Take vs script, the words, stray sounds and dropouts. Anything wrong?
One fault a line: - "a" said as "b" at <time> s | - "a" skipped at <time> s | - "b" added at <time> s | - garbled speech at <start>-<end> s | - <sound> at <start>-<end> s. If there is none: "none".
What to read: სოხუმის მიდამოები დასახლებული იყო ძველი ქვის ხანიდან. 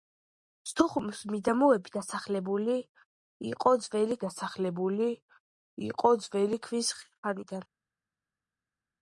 - "დასახლებული იყო ძველი" added at 4.2 s